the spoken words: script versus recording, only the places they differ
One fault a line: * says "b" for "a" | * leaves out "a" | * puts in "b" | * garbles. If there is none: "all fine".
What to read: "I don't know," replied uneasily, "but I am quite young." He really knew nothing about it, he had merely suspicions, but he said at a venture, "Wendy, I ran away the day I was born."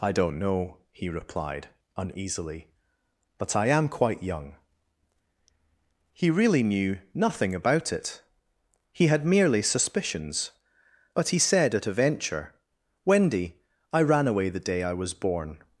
* puts in "he"